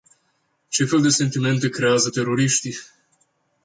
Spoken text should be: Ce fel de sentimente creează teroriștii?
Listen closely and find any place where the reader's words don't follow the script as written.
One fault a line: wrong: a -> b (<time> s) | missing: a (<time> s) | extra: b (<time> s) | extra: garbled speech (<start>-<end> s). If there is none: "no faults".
no faults